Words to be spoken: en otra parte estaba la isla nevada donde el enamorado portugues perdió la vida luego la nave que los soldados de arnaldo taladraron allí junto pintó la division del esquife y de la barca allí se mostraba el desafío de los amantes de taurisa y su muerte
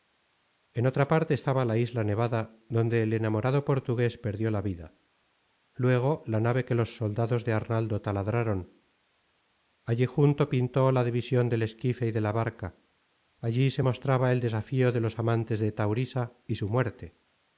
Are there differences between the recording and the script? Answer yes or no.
no